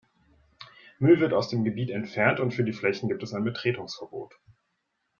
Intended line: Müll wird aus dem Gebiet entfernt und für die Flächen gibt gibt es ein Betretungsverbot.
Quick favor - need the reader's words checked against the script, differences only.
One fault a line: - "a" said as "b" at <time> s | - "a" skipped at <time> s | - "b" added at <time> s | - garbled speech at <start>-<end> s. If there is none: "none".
- "gibt" skipped at 3.2 s